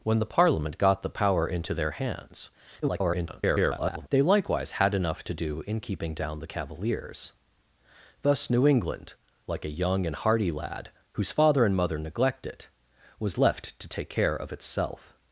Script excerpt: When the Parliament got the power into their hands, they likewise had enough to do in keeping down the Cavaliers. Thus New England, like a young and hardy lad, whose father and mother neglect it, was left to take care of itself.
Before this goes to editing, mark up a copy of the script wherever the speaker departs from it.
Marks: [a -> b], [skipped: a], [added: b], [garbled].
When the Parliament got the power into their hands, [garbled] they likewise had enough to do in keeping down the Cavaliers. Thus New England, like a young and hardy lad, whose father and mother neglect it, was left to take care of itself.